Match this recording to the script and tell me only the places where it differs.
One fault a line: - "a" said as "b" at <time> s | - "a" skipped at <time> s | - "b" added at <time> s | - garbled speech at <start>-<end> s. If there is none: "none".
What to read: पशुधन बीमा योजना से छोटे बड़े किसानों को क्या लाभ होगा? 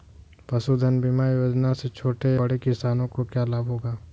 none